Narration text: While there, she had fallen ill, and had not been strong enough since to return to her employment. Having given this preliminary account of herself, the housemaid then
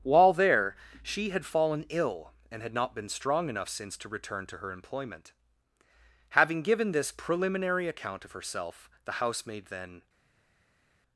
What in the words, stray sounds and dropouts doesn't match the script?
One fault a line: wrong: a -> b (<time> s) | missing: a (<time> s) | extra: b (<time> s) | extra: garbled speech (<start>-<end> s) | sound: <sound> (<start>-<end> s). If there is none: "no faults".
no faults